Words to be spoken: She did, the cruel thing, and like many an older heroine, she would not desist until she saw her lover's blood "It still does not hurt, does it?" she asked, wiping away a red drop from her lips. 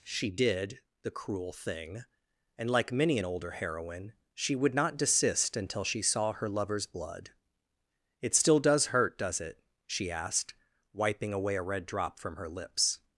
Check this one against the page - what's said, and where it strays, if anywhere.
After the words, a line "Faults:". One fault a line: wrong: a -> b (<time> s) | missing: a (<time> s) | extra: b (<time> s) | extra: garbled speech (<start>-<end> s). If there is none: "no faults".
She did, the cruel thing, and like many an older heroine, she would not desist until she saw her lover's blood "It still does hurt, does it?" she asked, wiping away a red drop from her lips.
Faults:
missing: not (8.9 s)